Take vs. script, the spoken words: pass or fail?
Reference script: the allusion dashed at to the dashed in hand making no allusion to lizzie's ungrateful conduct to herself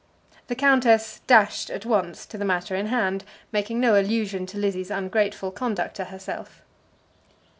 fail